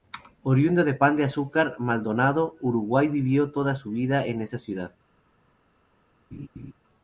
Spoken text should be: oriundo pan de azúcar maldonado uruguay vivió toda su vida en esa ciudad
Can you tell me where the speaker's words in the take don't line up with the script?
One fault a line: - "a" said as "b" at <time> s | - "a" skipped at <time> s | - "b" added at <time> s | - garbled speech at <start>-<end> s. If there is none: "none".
- "de" added at 0.8 s